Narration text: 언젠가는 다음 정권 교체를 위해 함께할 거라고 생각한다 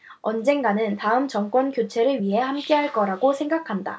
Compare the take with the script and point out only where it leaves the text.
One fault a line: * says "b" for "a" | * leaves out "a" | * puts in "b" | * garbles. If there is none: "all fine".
all fine